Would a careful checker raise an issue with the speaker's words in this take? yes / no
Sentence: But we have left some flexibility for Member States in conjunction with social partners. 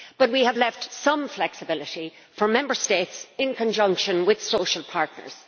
no